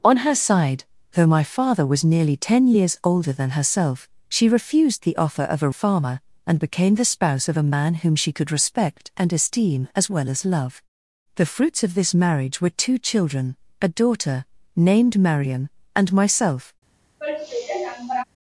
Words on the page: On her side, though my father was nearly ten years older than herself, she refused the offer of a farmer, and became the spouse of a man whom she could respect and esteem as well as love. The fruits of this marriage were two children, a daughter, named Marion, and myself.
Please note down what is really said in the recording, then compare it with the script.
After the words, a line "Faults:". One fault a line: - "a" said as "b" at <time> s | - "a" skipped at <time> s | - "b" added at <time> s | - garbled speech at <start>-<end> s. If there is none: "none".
On her side, though my father was nearly ten years older than herself, she refused the offer of a farmer, and became the spouse of a man whom she could respect and esteem as well as love. The fruits of this marriage were two children, a daughter, named Marion, and myself.
Faults:
none